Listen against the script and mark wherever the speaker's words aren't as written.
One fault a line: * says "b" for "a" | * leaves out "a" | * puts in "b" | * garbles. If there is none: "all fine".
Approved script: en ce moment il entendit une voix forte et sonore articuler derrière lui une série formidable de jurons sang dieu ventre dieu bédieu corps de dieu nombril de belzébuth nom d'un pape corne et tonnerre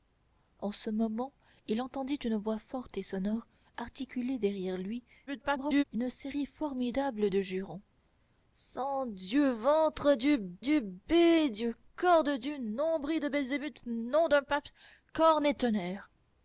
* garbles
* puts in "dieu"